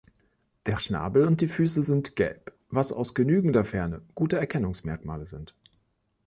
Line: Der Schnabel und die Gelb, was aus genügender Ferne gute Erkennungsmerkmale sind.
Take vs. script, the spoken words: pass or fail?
fail